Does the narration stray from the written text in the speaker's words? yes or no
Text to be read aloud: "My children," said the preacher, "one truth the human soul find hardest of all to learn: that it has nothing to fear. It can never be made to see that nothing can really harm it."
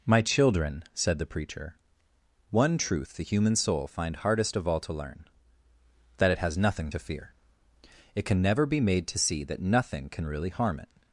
no